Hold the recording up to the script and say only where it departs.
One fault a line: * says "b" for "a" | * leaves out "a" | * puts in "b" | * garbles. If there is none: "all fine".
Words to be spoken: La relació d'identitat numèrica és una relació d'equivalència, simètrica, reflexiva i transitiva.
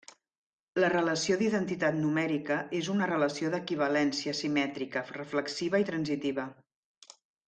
all fine